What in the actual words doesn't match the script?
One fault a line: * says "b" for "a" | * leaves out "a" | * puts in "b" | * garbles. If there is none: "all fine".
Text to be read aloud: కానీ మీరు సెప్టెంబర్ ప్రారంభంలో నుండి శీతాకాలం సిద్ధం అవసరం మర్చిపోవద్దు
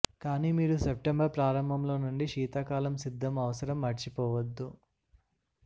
all fine